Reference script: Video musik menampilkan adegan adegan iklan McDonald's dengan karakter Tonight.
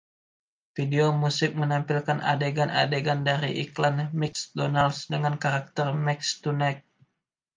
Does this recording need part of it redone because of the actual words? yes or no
yes